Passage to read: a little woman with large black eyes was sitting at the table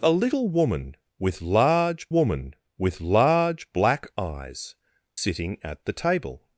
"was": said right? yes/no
no